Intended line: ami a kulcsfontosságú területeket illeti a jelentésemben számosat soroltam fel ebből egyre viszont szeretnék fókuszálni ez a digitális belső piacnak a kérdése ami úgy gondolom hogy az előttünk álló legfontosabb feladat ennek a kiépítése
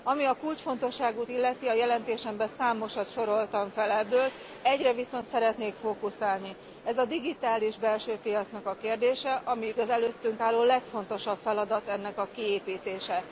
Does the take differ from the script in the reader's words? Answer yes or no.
yes